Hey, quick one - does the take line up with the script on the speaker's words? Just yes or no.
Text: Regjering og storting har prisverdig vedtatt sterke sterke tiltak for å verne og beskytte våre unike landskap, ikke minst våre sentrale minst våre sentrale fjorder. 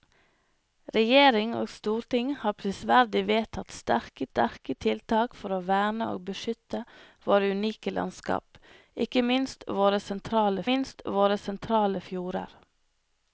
yes